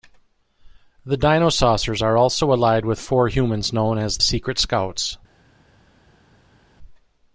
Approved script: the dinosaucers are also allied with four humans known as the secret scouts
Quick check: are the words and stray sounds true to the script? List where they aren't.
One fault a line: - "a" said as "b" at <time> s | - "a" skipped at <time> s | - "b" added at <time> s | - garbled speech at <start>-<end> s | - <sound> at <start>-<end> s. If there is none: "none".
- "the" skipped at 4.2 s